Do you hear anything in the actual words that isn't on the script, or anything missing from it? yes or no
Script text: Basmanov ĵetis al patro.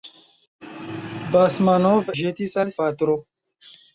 no